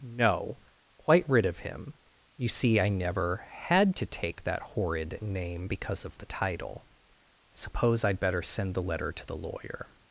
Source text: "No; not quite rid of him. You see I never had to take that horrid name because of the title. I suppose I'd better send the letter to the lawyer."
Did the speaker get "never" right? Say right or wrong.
right